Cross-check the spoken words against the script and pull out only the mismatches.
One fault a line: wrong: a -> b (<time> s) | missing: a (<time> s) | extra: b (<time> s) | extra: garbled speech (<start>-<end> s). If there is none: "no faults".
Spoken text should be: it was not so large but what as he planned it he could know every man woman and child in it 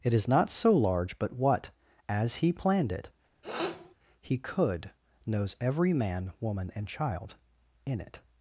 wrong: was -> is (0.1 s)
wrong: know -> knows (5.3 s)